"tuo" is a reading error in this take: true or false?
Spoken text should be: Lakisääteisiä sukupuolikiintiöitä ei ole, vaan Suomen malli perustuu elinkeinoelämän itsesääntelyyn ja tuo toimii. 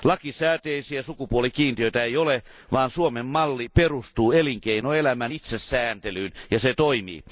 true